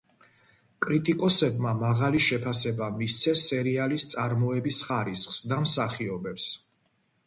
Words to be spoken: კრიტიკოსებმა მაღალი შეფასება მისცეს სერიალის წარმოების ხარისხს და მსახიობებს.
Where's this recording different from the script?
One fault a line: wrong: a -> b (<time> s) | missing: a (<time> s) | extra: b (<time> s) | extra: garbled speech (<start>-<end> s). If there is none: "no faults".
no faults